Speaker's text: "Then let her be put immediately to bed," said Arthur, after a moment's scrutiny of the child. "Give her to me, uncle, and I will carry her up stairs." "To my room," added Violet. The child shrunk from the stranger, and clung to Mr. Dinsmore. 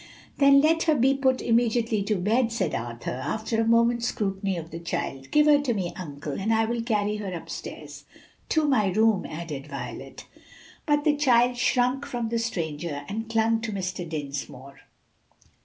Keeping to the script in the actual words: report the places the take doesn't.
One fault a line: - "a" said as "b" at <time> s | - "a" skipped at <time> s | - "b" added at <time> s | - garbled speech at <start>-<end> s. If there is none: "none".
- "But" added at 10.9 s